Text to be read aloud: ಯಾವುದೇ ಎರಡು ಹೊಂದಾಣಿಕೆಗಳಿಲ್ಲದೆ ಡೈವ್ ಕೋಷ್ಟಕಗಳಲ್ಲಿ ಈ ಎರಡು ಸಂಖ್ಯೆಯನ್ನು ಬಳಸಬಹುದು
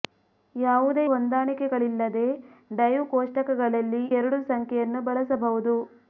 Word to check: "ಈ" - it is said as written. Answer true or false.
false